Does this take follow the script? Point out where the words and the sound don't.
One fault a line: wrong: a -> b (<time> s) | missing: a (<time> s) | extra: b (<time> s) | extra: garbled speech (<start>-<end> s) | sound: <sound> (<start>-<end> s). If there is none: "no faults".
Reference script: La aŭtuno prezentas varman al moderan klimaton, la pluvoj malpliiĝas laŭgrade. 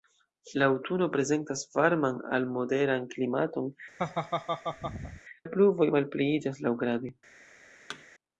sound: laugh (4.0-5.2 s)
sound: thud (7.9-8.1 s)